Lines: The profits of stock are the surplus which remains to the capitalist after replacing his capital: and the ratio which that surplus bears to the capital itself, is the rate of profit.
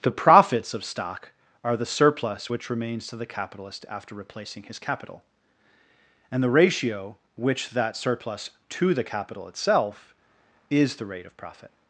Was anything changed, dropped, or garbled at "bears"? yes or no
yes